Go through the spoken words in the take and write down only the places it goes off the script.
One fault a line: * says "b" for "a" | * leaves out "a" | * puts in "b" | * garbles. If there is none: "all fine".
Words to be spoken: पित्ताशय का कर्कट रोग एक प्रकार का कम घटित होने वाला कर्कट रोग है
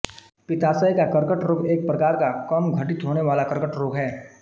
all fine